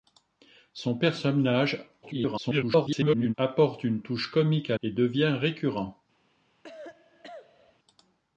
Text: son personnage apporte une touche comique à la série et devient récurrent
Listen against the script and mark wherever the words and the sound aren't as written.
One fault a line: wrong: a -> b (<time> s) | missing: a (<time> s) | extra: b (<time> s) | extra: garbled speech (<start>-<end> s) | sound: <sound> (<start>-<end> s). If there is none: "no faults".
extra: garbled speech (2.0-3.3 s)
missing: la série (4.8 s)
sound: cough (6.6-7.8 s)